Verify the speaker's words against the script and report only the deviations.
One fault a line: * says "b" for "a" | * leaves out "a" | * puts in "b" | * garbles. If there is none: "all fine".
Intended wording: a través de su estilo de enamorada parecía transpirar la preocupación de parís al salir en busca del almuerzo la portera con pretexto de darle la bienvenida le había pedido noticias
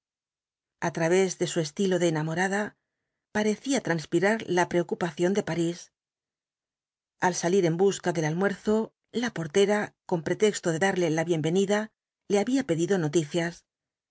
all fine